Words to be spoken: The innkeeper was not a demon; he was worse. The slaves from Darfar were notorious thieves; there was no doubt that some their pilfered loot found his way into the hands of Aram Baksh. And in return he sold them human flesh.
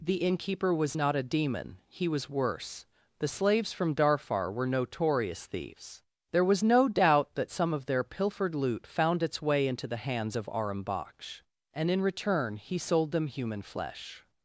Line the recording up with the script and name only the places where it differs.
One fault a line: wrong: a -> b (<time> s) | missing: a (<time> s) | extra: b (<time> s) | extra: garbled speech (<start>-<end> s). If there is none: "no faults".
extra: of (7.7 s)
wrong: his -> its (9.2 s)